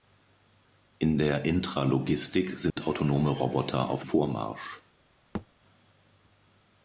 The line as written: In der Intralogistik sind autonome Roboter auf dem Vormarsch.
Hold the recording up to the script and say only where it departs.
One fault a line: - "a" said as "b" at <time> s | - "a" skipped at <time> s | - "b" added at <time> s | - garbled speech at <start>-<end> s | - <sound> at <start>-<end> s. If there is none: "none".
- dropout at 2.7-2.8 s
- "dem" skipped at 4.0 s
- thud at 5.3-5.5 s